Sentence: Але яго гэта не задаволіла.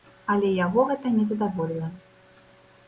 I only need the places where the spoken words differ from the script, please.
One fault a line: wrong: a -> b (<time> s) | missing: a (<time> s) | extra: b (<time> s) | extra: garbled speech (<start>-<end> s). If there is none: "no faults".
no faults